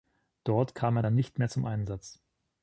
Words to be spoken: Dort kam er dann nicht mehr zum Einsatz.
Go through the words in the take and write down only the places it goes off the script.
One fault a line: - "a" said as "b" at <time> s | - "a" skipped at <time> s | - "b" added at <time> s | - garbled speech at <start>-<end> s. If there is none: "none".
none